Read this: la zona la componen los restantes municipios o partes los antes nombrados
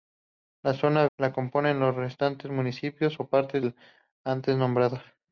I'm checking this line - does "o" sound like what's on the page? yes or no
yes